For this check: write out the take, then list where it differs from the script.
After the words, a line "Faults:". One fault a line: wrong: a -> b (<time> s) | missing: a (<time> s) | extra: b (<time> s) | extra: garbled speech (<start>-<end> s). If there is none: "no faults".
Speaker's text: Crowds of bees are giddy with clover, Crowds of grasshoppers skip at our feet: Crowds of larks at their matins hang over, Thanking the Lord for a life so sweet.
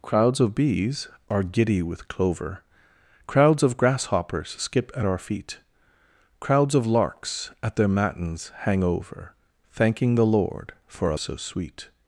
Crowds of bees are giddy with clover, Crowds of grasshoppers skip at our feet: Crowds of larks at their matins hang over, Thanking the Lord for a so sweet.
Faults:
missing: life (11.2 s)